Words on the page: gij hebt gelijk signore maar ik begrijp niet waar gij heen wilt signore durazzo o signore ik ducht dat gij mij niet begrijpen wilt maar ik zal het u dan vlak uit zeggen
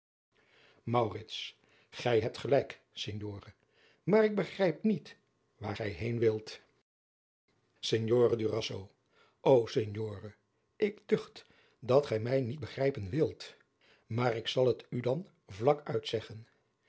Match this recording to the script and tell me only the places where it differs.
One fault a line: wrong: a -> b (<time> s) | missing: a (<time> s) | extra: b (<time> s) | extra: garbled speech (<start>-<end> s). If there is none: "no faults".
no faults